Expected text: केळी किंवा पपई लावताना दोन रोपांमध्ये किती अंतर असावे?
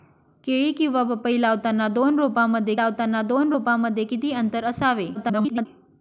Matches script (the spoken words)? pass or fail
fail